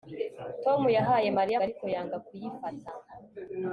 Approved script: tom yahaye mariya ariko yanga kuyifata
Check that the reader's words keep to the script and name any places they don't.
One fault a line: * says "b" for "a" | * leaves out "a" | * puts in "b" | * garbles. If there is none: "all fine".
all fine